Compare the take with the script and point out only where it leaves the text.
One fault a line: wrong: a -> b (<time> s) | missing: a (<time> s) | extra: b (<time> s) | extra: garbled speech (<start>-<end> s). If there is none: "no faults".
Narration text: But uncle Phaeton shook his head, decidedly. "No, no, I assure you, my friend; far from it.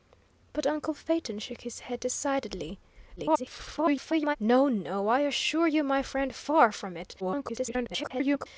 extra: garbled speech (3.2-4.4 s)
extra: garbled speech (7.2-8.5 s)